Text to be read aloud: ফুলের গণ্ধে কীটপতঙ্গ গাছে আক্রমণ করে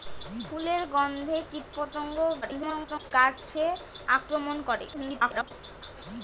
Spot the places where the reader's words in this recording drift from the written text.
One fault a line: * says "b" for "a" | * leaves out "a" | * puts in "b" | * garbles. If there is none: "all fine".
* garbles
* garbles